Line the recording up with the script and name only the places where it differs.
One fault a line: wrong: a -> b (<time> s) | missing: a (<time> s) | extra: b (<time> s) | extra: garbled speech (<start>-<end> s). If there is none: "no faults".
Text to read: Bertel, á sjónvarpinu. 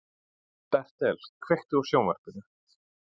extra: kveiktu (1.5 s)